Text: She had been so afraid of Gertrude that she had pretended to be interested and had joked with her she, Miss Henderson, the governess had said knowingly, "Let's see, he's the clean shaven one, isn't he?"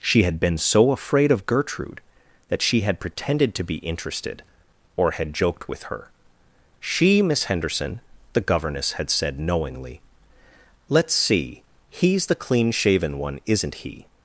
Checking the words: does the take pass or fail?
fail